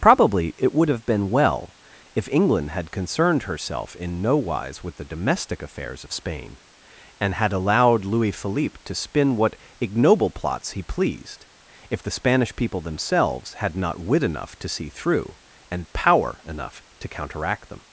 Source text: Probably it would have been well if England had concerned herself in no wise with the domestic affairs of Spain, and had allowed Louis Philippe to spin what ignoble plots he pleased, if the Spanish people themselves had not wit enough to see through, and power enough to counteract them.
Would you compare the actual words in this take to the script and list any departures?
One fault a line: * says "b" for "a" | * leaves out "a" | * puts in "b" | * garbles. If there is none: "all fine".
all fine